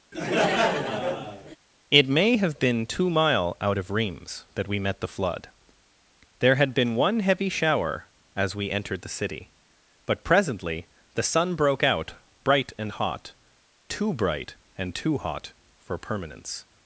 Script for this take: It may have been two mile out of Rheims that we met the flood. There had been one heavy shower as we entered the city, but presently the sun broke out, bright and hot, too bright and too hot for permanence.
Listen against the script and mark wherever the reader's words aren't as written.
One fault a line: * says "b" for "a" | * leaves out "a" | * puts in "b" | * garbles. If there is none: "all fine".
all fine